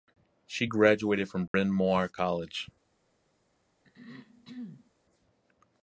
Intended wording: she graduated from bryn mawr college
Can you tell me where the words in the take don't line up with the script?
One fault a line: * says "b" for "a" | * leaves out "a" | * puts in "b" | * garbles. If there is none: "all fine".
all fine